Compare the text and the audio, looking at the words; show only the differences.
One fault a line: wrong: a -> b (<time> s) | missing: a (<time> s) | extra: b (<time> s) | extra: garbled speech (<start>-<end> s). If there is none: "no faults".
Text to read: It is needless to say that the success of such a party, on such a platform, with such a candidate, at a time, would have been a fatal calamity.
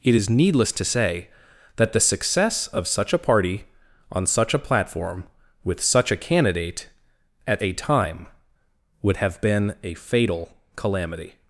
no faults